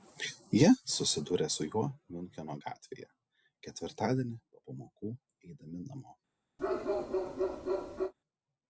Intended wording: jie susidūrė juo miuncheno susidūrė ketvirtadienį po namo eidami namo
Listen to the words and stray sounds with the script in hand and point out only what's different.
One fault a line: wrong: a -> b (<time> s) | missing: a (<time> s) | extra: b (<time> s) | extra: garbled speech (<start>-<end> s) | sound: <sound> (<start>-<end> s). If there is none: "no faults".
extra: su (1.6 s)
wrong: susidūrė -> gatvėje (2.6 s)
wrong: namo -> pamokų (4.7 s)
sound: bark (6.6-8.1 s)